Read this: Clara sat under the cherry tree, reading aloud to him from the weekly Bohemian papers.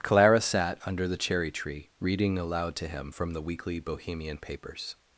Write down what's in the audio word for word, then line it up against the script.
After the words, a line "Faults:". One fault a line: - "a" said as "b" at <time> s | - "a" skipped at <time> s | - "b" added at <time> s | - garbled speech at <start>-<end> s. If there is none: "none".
Clara sat under the cherry tree, reading aloud to him from the weekly Bohemian papers.
Faults:
none